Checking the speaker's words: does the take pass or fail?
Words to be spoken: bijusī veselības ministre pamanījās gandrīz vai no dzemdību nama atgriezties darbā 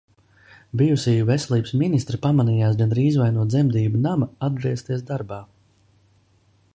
pass